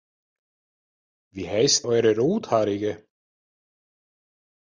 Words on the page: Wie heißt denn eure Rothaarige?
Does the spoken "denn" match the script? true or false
false